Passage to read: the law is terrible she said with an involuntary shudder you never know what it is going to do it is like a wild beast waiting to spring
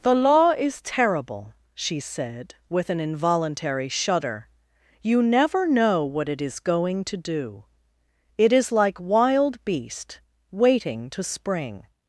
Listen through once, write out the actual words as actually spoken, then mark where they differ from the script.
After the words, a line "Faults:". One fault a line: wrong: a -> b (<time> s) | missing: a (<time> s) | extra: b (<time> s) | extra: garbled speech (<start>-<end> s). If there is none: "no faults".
the law is terrible she said with an involuntary shudder you never know what it is going to do it is like wild beast waiting to spring
Faults:
missing: a (9.0 s)